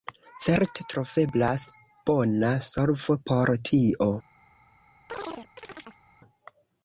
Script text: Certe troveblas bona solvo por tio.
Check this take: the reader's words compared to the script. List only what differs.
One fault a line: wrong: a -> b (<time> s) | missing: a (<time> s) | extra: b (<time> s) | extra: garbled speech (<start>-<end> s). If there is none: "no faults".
no faults